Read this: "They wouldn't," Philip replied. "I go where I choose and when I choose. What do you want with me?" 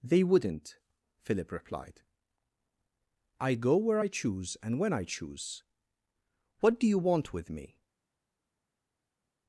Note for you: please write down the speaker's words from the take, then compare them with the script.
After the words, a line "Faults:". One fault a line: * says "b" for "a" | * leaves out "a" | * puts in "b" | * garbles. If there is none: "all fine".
"They wouldn't," Philip replied. "I go where I choose and when I choose. What do you want with me?"
Faults:
all fine